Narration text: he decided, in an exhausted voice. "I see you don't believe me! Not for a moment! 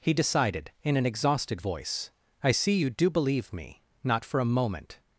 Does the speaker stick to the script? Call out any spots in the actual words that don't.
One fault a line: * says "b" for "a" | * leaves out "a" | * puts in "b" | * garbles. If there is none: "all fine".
* says "do" for "don't"